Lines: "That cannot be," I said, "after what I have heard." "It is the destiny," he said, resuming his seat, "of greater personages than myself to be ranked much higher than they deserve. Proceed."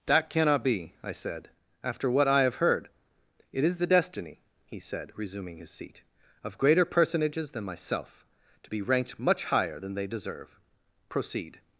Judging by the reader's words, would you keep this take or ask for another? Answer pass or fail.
pass